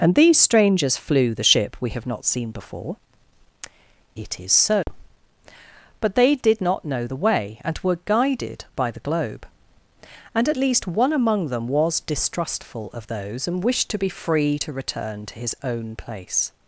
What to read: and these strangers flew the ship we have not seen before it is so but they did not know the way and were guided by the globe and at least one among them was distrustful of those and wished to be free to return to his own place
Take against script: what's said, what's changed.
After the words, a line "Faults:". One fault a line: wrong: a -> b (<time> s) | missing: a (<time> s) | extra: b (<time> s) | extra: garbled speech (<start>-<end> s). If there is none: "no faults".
and these strangers flew the ship we have not seen before it is so but they did not know the way and were guided by the globe and at least one among them was distrustful of those and wished to be free to return to his own place
Faults:
no faults